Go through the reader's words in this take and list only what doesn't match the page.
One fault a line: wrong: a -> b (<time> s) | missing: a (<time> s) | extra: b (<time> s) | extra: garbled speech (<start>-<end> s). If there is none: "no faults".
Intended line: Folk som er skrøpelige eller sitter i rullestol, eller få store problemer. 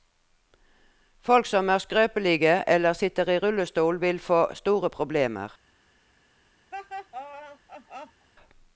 wrong: eller -> vil (4.0 s)